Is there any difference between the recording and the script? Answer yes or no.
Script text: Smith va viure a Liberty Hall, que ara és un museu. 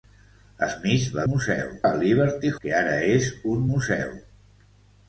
yes